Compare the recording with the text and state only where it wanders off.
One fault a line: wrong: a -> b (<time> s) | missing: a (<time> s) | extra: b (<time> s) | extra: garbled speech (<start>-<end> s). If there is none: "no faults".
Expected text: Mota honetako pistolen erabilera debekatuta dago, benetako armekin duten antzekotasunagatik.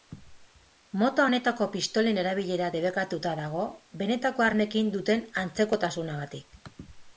no faults